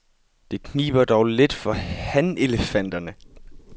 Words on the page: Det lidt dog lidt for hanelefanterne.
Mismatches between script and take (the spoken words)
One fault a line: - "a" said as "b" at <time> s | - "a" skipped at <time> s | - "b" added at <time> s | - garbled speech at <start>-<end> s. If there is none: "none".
- "lidt" said as "kniber" at 0.6 s